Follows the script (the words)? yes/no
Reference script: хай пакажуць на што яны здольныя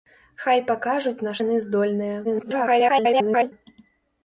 no